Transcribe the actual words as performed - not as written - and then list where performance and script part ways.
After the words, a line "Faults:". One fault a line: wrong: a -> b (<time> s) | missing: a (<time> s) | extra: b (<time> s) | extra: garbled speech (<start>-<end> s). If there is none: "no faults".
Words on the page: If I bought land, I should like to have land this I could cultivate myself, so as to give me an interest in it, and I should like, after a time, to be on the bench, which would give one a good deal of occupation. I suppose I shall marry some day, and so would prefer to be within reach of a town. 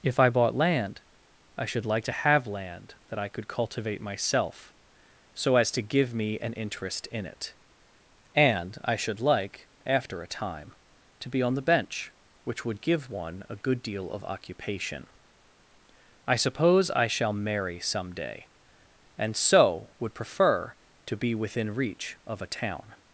If I bought land, I should like to have land that I could cultivate myself, so as to give me an interest in it, and I should like, after a time, to be on the bench, which would give one a good deal of occupation. I suppose I shall marry some day, and so would prefer to be within reach of a town.
Faults:
wrong: this -> that (3.1 s)